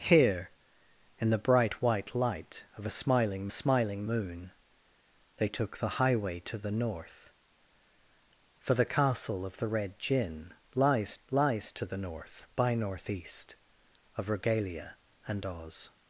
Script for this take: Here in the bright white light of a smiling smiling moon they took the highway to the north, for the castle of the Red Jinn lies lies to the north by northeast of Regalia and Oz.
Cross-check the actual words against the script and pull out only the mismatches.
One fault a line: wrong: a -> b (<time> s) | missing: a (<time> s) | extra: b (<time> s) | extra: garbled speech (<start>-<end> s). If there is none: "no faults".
no faults